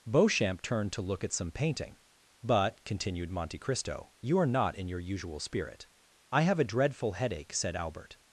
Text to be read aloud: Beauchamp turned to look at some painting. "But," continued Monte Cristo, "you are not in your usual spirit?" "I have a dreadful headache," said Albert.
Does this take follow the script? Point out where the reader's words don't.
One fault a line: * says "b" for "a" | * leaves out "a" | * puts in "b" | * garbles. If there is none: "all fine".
all fine